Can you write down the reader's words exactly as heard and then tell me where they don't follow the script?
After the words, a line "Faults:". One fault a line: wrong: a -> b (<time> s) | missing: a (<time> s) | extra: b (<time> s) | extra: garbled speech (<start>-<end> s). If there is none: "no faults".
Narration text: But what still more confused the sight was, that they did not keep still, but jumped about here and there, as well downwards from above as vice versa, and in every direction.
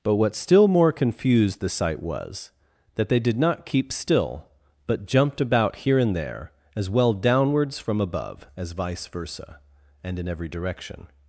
But what still more confused the sight was, that they did not keep still, but jumped about here and there, as well downwards from above as vice versa, and in every direction.
Faults:
no faults